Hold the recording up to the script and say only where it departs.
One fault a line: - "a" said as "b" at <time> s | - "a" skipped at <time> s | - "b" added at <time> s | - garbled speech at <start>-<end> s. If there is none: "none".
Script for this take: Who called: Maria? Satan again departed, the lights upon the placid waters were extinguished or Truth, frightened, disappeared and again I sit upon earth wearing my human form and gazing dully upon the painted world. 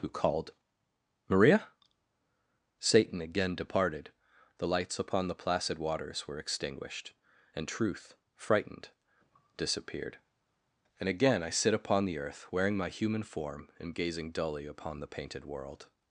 - "or" said as "and" at 7.5 s
- "the" added at 12.1 s